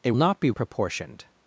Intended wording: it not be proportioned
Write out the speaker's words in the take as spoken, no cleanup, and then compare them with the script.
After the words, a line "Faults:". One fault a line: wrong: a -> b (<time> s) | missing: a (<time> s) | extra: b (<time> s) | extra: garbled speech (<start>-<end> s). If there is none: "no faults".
it not be proportioned
Faults:
no faults